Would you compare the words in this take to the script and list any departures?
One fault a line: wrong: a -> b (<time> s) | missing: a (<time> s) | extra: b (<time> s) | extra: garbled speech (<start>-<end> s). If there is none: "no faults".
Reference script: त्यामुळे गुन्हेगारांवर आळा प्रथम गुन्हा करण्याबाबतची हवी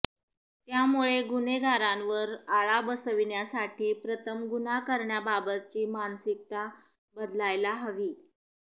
extra: बसविण्यासाठी (2.8 s)
extra: मानसिकता बदलायला (5.9 s)